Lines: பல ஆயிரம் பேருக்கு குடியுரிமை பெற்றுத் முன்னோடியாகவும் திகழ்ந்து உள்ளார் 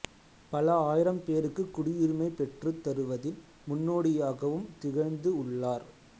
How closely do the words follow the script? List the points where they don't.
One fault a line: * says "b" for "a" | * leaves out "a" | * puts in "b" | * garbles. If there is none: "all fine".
* puts in "தருவதில்"